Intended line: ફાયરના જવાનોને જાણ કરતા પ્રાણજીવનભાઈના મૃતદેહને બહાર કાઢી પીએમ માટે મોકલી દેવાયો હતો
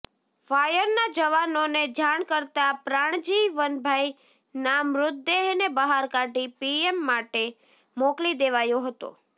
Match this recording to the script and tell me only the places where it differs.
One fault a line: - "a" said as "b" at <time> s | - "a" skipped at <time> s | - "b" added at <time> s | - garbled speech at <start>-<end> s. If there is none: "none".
none